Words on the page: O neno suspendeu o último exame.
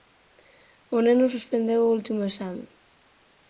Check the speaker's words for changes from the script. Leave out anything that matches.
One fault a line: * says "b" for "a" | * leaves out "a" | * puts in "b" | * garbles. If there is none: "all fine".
all fine